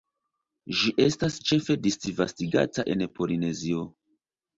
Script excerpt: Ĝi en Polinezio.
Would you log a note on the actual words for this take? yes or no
yes